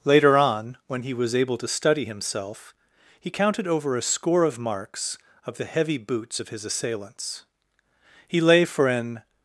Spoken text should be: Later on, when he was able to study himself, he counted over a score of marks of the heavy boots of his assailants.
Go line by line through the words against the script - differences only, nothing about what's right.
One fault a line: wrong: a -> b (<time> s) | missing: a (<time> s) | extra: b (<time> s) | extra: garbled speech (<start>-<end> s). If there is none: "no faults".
extra: He lay for an (8.3 s)